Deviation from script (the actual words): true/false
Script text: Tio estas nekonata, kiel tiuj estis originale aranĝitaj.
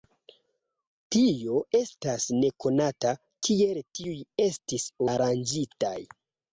true